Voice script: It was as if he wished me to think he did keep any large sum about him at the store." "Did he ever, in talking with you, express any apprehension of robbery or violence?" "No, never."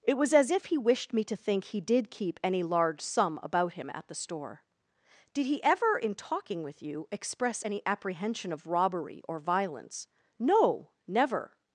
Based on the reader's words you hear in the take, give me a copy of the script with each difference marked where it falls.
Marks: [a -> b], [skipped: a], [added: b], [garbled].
It was as if he wished me to think he did keep any large sum about him at the store." "Did he ever, in talking with you, express any apprehension of robbery or violence?" "No, never."